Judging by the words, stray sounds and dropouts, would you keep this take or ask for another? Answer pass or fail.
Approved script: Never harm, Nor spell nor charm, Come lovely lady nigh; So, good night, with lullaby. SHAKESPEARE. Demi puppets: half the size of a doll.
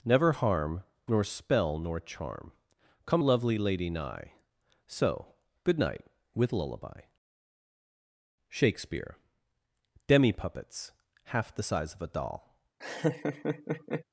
fail